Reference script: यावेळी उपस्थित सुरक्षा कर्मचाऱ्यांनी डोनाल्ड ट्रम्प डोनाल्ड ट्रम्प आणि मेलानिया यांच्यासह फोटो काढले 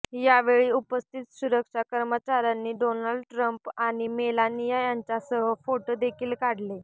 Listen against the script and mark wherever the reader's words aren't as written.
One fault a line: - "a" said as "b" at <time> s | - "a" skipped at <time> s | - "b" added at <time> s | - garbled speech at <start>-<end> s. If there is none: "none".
- "डोनाल्ड ट्रम्प" skipped at 3.7 s
- "देखील" added at 6.0 s